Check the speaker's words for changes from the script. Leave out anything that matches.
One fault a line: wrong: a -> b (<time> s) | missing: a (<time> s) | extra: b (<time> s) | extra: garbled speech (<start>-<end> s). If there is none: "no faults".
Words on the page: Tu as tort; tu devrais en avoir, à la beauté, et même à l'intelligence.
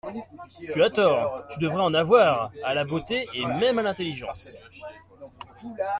no faults